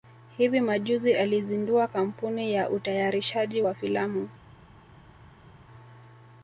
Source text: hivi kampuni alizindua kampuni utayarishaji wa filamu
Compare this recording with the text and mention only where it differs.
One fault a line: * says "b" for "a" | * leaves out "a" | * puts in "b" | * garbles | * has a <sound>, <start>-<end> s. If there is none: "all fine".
* says "majuzi" for "kampuni"
* puts in "ya"